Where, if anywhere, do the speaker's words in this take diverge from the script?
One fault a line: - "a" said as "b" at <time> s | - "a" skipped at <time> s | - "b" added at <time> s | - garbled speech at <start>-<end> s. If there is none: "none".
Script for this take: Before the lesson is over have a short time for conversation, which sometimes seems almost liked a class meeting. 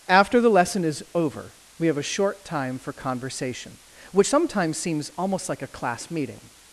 - "Before" said as "After" at 0.1 s
- "we" added at 1.8 s
- "liked" said as "like" at 5.5 s